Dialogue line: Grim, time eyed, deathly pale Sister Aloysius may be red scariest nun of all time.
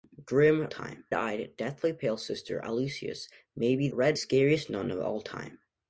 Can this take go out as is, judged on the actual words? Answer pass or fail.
pass